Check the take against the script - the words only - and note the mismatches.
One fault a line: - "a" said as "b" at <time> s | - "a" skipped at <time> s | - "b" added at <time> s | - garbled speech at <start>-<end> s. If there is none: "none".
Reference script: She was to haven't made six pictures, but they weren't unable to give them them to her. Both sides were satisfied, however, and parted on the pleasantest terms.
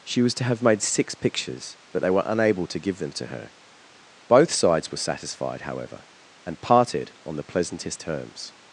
- "haven't" said as "have" at 0.4 s
- "weren't" said as "were" at 2.1 s
- "them" skipped at 3.1 s